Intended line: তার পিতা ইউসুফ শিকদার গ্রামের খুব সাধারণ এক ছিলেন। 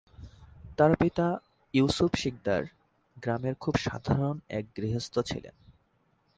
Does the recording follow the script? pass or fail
fail